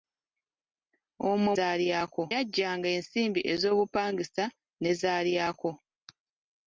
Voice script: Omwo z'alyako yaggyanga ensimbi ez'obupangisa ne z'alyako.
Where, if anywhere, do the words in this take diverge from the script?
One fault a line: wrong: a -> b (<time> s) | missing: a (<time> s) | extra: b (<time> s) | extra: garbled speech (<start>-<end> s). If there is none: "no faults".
no faults